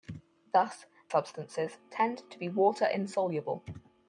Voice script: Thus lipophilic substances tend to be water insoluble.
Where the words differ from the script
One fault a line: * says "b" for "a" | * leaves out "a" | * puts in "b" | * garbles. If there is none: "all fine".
* leaves out "lipophilic"